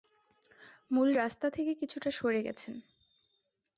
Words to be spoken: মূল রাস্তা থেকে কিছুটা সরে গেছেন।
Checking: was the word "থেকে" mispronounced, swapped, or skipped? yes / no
no